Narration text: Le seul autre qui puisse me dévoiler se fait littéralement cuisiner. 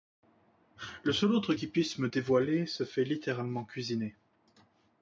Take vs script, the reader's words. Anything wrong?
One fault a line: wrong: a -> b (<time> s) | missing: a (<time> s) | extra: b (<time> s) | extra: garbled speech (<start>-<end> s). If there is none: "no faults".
no faults